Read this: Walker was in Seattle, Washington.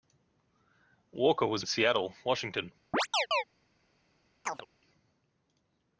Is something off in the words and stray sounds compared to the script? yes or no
yes